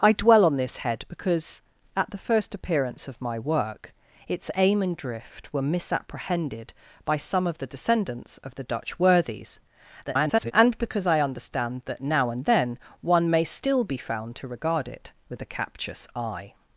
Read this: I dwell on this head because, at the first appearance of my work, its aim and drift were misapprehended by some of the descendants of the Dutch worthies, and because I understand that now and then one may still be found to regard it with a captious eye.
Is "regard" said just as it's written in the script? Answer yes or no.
yes